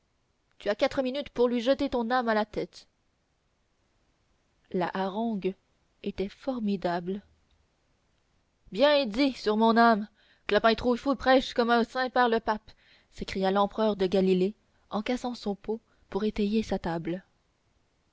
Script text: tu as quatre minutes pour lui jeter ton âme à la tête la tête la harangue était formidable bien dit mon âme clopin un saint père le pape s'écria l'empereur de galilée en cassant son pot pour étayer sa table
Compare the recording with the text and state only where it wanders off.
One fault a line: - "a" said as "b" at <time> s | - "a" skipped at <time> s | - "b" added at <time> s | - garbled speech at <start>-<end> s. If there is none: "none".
- "tête la" skipped at 4.9 s
- "sur" added at 9.3 s
- "trouillefou prêche comme" added at 10.7 s